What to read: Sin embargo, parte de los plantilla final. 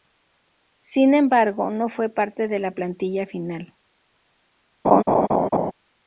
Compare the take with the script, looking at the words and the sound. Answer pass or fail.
fail